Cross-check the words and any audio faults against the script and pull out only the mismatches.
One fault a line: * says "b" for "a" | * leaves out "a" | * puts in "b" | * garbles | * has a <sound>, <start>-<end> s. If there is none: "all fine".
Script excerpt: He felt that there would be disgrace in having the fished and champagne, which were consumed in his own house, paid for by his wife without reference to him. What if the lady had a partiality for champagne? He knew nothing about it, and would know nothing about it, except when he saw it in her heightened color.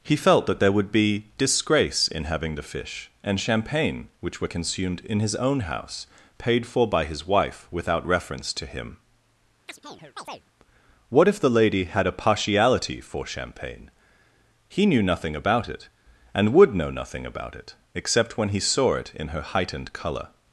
* says "fish" for "fished"
* has a chirp, 9.7-10.5 s